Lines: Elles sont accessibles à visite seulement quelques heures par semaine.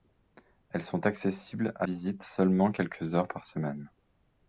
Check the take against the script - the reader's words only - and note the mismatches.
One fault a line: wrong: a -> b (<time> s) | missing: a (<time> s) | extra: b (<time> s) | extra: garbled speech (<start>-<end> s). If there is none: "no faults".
no faults